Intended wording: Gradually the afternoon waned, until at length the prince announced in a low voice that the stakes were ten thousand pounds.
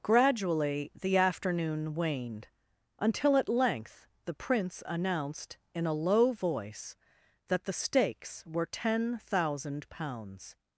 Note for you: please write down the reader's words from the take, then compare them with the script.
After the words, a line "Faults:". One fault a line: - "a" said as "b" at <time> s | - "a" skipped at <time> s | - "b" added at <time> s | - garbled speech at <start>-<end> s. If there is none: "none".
Gradually the afternoon waned, until at length the prince announced in a low voice that the stakes were ten thousand pounds.
Faults:
none